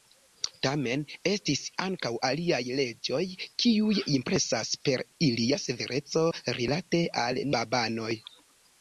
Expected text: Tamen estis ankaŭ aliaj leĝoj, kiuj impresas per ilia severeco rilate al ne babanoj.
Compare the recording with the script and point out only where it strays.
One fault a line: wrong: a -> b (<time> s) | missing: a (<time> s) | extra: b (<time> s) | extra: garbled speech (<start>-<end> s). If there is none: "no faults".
missing: ne (7.5 s)